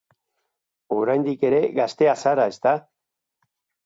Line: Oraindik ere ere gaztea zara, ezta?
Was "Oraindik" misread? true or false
false